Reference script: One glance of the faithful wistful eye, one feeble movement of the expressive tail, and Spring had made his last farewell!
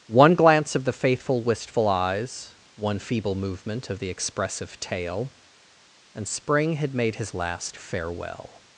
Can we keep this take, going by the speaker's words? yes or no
no